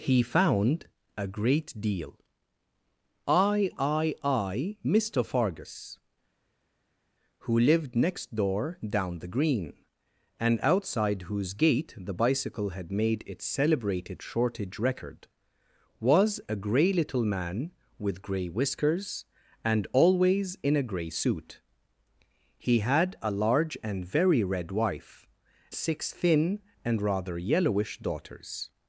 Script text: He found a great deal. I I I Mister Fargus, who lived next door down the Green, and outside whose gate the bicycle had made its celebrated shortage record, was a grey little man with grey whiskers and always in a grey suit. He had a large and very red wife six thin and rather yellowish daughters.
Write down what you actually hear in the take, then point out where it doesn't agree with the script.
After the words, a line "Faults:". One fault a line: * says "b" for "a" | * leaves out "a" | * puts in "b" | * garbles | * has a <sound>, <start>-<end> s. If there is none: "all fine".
He found a great deal. I I I Mister Fargus, who lived next door down the Green, and outside whose gate the bicycle had made its celebrated shortage record, was a grey little man with grey whiskers and always in a grey suit. He had a large and very red wife six thin and rather yellowish daughters.
Faults:
all fine